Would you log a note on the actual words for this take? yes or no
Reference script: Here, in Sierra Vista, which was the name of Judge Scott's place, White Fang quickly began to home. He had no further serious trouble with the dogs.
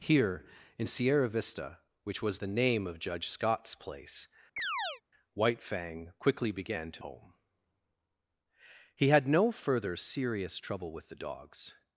no